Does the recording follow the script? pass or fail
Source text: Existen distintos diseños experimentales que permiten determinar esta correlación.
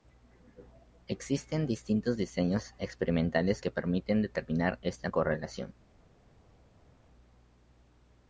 pass